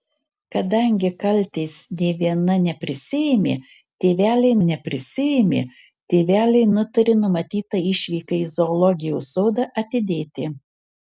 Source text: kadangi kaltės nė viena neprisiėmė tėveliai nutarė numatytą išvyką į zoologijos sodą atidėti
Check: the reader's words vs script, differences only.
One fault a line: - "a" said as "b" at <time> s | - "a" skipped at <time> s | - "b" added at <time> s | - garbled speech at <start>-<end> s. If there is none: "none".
- "neprisiėmė tėveliai" added at 4.7 s